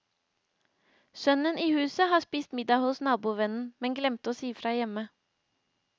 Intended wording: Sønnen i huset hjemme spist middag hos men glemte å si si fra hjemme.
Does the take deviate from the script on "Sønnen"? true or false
false